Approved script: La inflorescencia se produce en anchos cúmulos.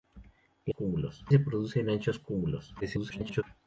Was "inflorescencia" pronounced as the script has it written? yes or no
no